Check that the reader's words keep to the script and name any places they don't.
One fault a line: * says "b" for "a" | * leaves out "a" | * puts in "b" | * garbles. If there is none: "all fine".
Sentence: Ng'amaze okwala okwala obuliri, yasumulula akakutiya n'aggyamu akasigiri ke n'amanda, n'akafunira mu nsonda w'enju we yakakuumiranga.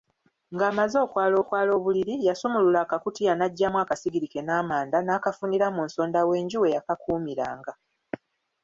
all fine